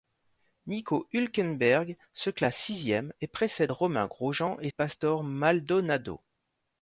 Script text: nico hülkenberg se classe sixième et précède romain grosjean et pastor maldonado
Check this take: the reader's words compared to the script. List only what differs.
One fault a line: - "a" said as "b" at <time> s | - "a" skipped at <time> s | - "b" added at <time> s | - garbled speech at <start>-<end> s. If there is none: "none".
none